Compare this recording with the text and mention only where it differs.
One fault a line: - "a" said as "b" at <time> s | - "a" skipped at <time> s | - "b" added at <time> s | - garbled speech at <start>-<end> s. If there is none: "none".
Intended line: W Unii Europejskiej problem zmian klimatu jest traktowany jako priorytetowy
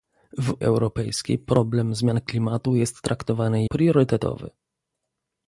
- "Unii" skipped at 0.6 s
- "jako" skipped at 3.7 s